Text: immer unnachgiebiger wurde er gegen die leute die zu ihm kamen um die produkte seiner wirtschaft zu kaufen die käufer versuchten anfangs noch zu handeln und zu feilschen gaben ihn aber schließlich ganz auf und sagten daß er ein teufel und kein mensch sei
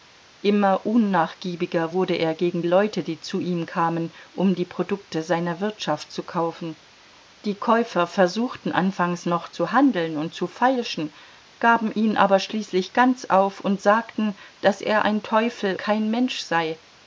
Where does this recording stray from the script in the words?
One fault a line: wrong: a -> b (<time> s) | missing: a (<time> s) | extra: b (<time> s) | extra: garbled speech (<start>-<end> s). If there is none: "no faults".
missing: die (2.6 s)
missing: und (15.7 s)